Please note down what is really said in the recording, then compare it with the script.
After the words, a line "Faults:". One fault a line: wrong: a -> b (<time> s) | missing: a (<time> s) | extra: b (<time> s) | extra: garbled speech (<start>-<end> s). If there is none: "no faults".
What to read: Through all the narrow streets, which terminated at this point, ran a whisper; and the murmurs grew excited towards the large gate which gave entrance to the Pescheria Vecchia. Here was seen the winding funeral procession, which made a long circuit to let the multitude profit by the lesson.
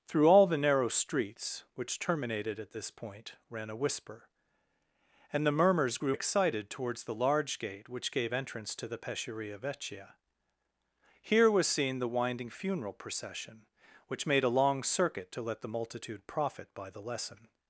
Through all the narrow streets, which terminated at this point, ran a whisper; and the murmurs grew excited towards the large gate which gave entrance to the Pescheria Vecchia. Here was seen the winding funeral procession, which made a long circuit to let the multitude profit by the lesson.
Faults:
no faults